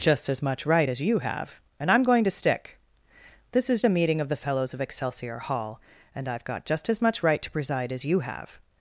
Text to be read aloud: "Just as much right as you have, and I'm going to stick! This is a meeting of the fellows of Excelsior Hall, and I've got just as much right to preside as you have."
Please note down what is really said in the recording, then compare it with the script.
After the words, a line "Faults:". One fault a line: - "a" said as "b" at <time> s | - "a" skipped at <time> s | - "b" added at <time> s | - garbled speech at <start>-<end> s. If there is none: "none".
"Just as much right as you have, and I'm going to stick! This is a meeting of the fellows of Excelsior Hall, and I've got just as much right to preside as you have."
Faults:
none